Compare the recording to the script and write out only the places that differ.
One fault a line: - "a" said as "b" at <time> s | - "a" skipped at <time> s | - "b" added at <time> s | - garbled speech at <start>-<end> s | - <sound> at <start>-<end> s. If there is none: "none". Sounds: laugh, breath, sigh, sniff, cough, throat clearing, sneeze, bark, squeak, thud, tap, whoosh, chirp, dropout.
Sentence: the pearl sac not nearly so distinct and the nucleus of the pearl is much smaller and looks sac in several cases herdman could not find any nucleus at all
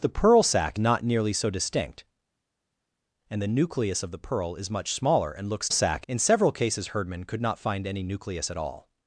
none